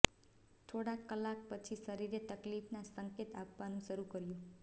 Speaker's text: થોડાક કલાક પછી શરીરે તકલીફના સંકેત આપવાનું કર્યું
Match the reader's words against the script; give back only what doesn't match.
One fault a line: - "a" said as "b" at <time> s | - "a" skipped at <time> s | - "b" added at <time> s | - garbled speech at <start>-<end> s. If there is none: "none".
- "શરૂ" added at 3.9 s